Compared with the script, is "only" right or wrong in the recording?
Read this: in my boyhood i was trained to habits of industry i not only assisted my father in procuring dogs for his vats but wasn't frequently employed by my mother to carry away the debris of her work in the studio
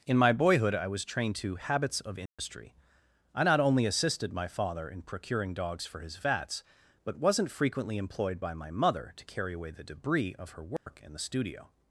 right